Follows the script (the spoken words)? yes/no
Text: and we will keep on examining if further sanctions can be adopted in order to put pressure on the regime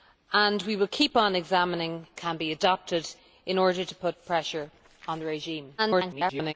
no